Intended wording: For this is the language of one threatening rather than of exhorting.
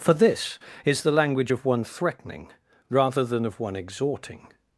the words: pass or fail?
fail